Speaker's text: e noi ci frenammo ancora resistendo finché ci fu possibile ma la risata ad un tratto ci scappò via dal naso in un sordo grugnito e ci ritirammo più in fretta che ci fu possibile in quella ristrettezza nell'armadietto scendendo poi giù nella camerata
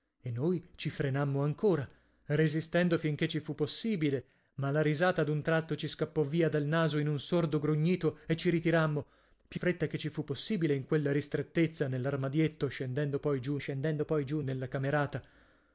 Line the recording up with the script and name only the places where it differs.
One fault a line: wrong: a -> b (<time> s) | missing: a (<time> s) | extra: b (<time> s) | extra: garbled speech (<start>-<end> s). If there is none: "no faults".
missing: in (9.6 s)
extra: scendendo poi giù (13.6 s)